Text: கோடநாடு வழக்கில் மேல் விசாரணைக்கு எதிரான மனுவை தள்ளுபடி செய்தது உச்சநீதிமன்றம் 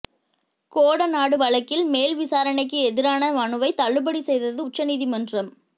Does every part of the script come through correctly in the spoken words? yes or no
yes